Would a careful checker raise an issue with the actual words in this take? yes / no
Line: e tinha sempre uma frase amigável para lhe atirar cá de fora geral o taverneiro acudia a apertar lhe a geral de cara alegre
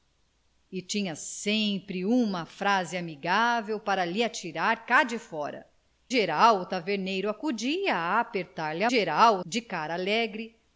no